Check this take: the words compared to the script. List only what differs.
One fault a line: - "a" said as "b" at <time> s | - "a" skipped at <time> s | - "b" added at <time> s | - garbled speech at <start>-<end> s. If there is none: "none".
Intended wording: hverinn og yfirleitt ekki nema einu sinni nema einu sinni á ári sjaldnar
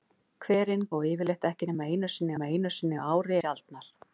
none